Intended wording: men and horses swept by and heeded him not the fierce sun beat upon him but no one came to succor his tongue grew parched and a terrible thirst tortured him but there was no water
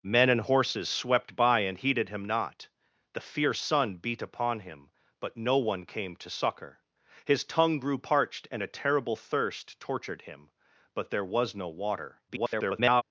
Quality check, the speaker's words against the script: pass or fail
fail